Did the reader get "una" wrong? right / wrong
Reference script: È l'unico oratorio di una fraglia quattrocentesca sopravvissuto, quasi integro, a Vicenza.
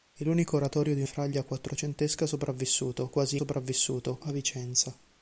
wrong